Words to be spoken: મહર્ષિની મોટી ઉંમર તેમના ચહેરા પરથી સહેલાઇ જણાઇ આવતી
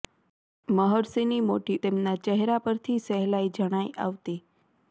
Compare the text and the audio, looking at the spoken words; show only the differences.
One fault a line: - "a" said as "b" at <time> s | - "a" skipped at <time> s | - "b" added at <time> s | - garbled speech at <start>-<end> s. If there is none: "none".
- "ઉંમર" skipped at 1.8 s